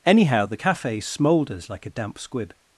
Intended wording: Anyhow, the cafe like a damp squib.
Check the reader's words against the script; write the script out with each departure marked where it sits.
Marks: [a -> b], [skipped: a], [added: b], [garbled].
Anyhow, the cafe [added: smoulders] like a damp squib.